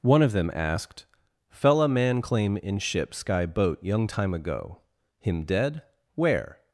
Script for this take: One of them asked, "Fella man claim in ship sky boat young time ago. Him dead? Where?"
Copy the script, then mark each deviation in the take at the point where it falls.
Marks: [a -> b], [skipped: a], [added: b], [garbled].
One of them asked, "Fella man claim in ship sky boat young time ago. Him dead? Where?"